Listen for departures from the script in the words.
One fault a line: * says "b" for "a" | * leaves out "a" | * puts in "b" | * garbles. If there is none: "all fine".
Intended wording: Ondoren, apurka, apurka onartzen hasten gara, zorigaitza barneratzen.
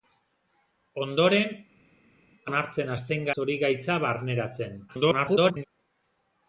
* leaves out "apurka apurka"
* leaves out "gara"
* garbles